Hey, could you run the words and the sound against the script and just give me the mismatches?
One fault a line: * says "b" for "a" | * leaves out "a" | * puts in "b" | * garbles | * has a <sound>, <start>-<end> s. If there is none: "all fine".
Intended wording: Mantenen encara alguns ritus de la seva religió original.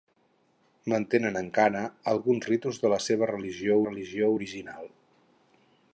* puts in "religió"